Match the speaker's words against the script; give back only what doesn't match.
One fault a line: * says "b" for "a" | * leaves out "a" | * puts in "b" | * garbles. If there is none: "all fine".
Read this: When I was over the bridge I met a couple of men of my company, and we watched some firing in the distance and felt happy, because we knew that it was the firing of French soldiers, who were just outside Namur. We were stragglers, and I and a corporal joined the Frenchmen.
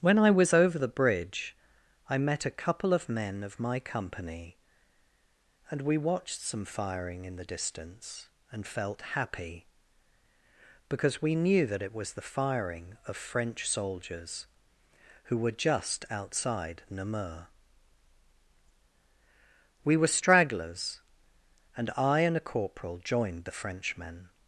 all fine